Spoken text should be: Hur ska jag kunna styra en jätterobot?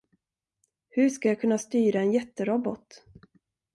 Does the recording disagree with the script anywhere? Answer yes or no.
no